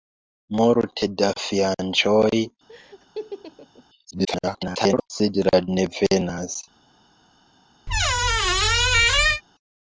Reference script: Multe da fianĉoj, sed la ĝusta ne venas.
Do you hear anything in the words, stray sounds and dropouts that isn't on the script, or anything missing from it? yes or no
yes